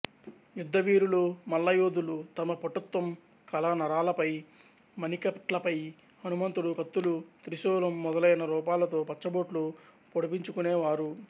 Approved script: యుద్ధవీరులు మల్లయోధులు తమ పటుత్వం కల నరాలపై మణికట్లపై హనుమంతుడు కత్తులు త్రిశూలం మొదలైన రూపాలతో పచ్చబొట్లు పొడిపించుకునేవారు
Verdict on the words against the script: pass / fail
pass